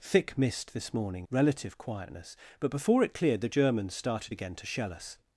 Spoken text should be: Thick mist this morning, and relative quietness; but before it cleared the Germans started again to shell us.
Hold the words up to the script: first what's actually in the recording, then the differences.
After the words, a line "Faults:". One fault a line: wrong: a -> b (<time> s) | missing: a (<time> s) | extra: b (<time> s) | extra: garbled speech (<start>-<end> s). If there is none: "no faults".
Thick mist this morning, relative quietness; but before it cleared the Germans started again to shell us.
Faults:
missing: and (1.3 s)